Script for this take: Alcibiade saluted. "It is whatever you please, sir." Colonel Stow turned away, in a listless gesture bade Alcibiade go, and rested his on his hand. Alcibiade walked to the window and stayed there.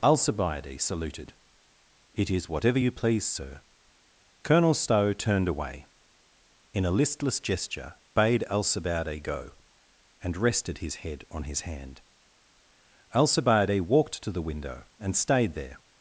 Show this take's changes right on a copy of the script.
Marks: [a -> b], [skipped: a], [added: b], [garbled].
Alcibiade saluted. "It is whatever you please, sir." Colonel Stow turned away, in a listless gesture bade Alcibiade go, and rested his [added: head] on his hand. Alcibiade walked to the window and stayed there.